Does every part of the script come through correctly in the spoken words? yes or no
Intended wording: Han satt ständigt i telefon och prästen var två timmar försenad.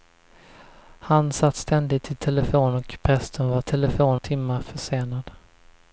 no